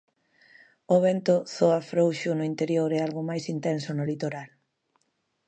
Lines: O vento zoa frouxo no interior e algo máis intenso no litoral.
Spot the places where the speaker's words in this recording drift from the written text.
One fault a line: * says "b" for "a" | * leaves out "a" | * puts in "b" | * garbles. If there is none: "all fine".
all fine